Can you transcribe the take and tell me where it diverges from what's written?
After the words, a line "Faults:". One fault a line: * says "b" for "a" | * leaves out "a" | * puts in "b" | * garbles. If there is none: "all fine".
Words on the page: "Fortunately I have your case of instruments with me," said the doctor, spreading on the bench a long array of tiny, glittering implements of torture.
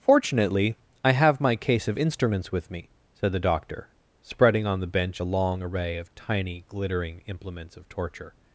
"Fortunately I have my case of instruments with me," said the doctor, spreading on the bench a long array of tiny, glittering implements of torture.
Faults:
* says "my" for "your"